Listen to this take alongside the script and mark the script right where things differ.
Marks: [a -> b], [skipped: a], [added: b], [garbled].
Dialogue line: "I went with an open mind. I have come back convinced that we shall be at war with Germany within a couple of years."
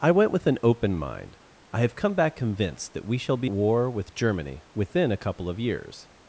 "I went with an open mind. I have come back convinced that we shall be [skipped: at] war with Germany within a couple of years."